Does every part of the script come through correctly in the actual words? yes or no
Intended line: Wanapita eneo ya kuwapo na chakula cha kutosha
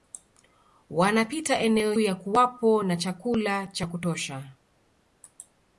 yes